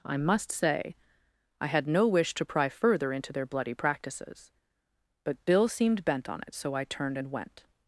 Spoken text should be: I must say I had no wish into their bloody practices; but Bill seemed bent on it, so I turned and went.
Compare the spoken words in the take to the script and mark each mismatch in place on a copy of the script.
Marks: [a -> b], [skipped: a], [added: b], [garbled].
I must say I had no wish [added: to pry further] into their bloody practices; but Bill seemed bent on it, so I turned and went.